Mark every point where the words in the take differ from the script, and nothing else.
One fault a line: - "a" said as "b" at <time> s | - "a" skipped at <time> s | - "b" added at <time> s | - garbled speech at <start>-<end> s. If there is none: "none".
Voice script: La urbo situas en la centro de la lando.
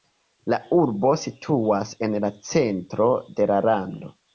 none